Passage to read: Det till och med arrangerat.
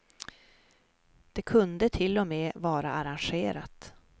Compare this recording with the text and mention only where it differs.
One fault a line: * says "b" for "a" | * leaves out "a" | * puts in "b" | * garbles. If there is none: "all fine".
* puts in "kunde"
* puts in "vara"